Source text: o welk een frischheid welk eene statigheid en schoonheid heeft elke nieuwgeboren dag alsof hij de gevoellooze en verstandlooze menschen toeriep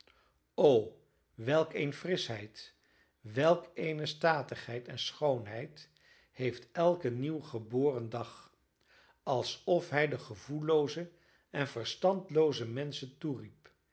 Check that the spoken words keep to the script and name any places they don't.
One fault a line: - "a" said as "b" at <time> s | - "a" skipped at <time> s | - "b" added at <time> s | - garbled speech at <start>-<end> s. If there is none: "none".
none